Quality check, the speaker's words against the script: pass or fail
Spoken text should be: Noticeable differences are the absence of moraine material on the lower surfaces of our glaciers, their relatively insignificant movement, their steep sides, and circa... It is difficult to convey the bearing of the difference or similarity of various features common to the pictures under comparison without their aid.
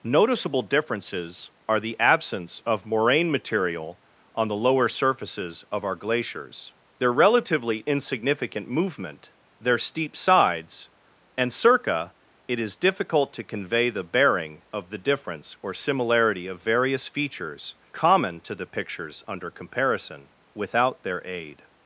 pass